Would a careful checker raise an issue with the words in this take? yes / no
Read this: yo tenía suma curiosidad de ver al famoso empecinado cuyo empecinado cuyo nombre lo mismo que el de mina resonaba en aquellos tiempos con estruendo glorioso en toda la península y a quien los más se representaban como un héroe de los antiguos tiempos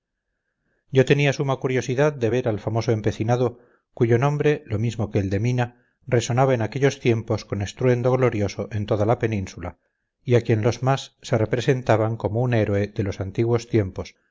yes